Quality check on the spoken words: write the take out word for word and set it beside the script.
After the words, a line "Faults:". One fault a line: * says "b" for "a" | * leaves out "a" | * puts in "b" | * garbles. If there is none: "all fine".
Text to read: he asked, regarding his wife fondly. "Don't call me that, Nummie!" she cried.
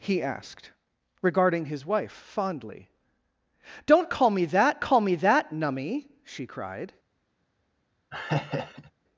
he asked, regarding his wife fondly. "Don't call me that call me that, Nummie!" she cried.
Faults:
* puts in "call me that"